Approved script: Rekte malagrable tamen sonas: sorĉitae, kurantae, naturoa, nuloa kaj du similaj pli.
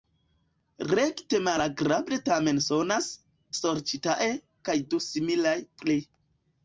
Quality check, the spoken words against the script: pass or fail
fail